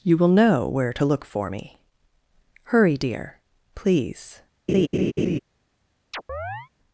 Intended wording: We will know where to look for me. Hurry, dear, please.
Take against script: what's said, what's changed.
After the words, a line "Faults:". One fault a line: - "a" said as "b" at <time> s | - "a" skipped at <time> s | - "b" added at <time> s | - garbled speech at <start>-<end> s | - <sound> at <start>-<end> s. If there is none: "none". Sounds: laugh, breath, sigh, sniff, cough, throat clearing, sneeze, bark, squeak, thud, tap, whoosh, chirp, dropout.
You will know where to look for me. Hurry, dear, please.
Faults:
- "We" said as "You" at 0.0 s
- laugh at 4.7-5.4 s
- chirp at 6.1-6.7 s